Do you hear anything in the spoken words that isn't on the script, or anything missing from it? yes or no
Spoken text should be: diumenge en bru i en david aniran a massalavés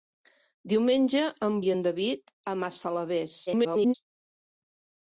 yes